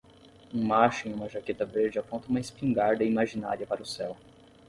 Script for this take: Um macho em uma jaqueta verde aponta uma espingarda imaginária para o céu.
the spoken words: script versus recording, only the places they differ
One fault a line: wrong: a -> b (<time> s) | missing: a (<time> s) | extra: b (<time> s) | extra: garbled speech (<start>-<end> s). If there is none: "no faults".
no faults